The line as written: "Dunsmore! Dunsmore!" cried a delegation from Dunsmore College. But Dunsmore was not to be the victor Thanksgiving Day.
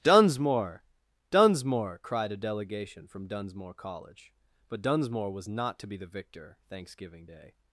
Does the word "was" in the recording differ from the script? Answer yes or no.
no